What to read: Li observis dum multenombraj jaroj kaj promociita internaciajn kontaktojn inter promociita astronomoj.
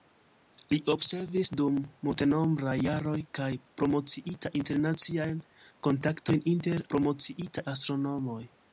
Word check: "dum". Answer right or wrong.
right